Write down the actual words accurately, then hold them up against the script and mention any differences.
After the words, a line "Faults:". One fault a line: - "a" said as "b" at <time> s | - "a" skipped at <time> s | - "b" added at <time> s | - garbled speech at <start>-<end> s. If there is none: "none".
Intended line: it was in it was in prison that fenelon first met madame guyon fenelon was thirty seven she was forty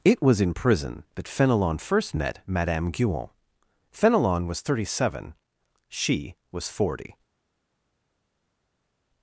it was in prison that fenelon first met madame guyon fenelon was thirty seven she was forty
Faults:
- "it was in" skipped at 0.6 s